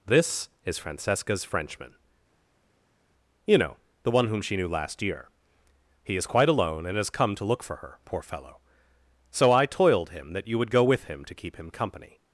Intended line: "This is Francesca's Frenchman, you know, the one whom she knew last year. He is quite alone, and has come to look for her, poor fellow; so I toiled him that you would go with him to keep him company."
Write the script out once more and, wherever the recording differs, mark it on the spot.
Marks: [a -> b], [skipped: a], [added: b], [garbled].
"This is Francesca's Frenchman, you know, the one whom she knew last year. He is quite alone, and has come to look for her, poor fellow; so I toiled him that you would go with him to keep him company."